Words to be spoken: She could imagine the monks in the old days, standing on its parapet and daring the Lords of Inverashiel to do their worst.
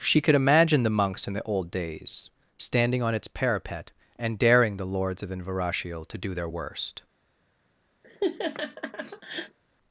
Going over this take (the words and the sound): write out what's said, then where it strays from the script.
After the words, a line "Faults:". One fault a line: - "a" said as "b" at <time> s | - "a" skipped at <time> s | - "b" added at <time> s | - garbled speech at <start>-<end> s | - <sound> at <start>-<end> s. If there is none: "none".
She could imagine the monks in the old days, standing on its parapet and daring the Lords of Inverashiel to do their worst.
Faults:
- laugh at 8.0-9.6 s